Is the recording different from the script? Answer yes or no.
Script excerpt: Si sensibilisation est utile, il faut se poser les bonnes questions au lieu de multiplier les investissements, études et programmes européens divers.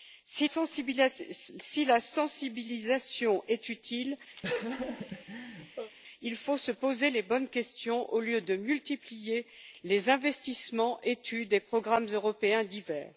no